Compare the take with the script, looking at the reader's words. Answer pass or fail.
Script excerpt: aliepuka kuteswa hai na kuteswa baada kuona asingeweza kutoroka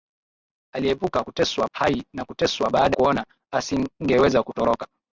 pass